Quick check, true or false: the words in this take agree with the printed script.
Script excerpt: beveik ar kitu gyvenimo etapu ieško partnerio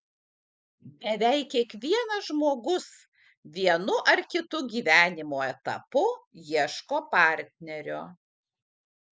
false